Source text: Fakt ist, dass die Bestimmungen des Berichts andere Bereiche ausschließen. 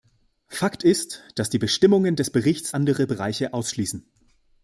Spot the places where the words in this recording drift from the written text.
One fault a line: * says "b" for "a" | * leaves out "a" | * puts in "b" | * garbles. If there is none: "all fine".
all fine